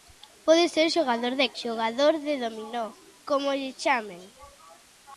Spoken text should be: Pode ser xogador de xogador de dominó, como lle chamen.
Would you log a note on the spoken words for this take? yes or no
no